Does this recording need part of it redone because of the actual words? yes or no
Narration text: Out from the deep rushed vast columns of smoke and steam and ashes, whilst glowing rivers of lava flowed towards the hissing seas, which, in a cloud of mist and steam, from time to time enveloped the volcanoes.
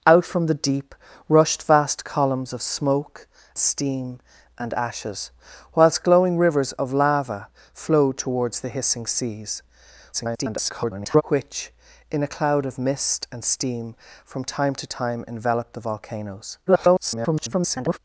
yes